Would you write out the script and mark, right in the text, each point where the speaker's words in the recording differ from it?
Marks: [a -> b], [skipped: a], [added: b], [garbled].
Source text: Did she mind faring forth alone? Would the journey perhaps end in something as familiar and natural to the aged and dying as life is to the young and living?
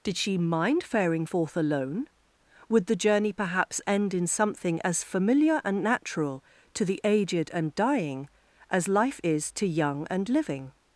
Did she mind faring forth alone? Would the journey perhaps end in something as familiar and natural to the aged and dying as life is to [skipped: the] young and living?